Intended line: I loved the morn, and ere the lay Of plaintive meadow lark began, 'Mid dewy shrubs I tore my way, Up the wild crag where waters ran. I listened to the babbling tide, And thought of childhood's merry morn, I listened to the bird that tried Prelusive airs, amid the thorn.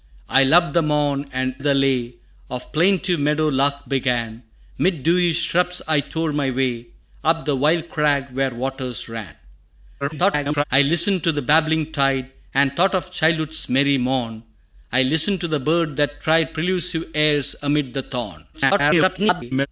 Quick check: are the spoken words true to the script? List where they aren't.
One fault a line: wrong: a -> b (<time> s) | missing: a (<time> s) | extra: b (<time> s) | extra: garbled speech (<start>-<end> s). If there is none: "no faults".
missing: ere (1.5 s)
extra: garbled speech (10.0-10.6 s)
extra: garbled speech (18.5-19.7 s)